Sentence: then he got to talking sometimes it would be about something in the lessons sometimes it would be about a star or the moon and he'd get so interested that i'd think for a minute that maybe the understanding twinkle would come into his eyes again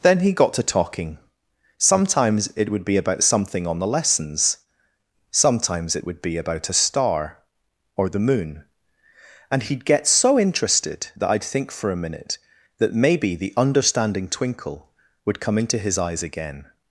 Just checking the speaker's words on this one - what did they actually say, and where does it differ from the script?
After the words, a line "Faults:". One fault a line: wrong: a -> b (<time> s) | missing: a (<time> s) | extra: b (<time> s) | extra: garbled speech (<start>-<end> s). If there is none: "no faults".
then he got to talking sometimes it would be about something on the lessons sometimes it would be about a star or the moon and he'd get so interested that i'd think for a minute that maybe the understanding twinkle would come into his eyes again
Faults:
wrong: in -> on (3.7 s)